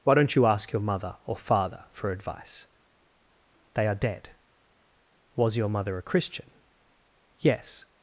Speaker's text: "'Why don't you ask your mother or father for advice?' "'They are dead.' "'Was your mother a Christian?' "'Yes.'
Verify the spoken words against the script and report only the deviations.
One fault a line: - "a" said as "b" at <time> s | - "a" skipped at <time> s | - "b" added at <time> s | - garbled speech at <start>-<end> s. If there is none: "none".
none